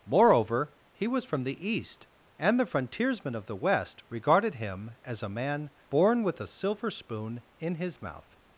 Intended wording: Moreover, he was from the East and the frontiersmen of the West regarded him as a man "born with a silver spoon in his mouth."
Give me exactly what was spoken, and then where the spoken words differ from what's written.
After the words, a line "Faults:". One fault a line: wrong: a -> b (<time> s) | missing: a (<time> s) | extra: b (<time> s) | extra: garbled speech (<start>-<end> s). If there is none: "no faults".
Moreover, he was from the East and the frontiersmen of the West regarded him as a man "born with a silver spoon in his mouth."
Faults:
no faults